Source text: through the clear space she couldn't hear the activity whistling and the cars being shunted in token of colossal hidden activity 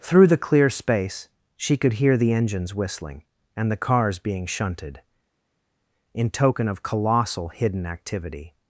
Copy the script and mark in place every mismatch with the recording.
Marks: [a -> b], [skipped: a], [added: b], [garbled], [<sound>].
through the clear space she [couldn't -> could] hear the [activity -> engines] whistling and the cars being shunted in token of colossal hidden activity